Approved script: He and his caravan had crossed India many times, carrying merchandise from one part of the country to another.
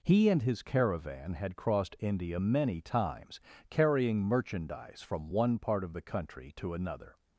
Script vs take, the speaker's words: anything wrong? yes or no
no